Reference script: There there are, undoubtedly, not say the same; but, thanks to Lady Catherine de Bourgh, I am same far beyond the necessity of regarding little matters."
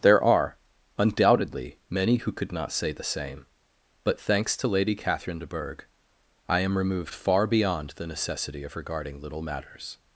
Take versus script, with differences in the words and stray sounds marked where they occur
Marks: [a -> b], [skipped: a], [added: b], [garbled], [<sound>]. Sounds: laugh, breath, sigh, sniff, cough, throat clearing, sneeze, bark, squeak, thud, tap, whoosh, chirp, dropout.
There [skipped: there] are, undoubtedly, [added: many who could] not say the same; but, thanks to Lady Catherine de Bourgh, I am [same -> removed] far beyond the necessity of regarding little matters."